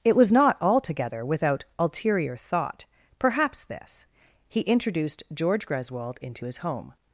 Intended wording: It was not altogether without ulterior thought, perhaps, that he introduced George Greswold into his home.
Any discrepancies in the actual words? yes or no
yes